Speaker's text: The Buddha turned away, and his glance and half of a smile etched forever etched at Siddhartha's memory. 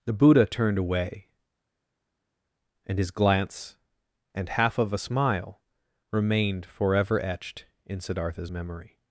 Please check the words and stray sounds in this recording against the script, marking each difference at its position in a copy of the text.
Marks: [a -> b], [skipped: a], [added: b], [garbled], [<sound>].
The Buddha turned away, and his glance and half of a smile [etched -> remained] forever etched [at -> in] Siddhartha's memory.